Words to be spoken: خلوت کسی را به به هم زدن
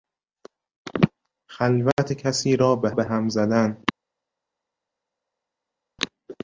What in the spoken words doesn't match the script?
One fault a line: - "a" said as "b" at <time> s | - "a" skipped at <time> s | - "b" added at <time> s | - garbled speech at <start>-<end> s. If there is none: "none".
none